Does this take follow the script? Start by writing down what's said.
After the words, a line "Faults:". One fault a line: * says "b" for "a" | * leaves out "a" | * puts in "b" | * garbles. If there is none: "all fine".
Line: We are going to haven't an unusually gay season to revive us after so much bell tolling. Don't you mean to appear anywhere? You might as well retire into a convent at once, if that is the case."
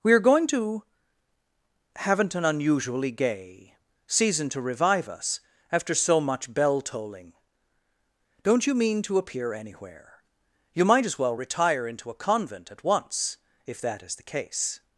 We are going to haven't an unusually gay season to revive us after so much bell tolling. Don't you mean to appear anywhere? You might as well retire into a convent at once, if that is the case."
Faults:
all fine